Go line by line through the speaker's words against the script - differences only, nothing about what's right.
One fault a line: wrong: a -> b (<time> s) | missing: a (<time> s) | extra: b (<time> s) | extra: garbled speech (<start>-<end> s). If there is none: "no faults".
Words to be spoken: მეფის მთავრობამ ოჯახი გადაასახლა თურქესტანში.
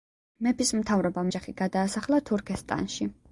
no faults